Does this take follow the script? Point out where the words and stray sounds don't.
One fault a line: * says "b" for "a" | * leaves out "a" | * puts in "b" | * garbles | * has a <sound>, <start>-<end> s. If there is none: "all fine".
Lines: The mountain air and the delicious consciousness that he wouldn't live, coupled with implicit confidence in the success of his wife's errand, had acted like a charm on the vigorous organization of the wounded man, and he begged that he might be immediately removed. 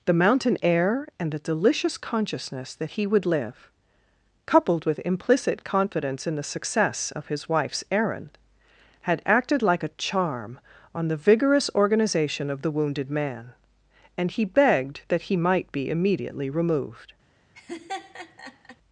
* says "would" for "wouldn't"
* has a laugh, 17.5-18.8 s